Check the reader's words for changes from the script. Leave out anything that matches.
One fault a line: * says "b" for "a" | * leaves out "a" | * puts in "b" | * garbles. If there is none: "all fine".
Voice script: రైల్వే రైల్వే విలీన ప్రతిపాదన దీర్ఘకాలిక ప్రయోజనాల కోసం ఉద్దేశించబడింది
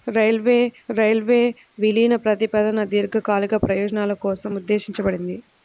all fine